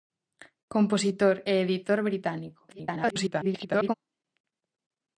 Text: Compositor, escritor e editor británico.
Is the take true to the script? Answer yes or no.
no